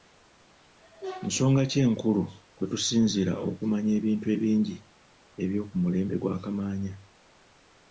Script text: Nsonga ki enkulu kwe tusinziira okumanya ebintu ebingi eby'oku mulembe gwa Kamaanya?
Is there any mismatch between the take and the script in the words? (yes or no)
no